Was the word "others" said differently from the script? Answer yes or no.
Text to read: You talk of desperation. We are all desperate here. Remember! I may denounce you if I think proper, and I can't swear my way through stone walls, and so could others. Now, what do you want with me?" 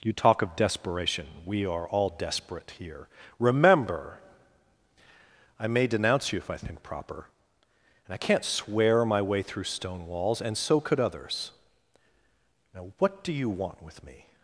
no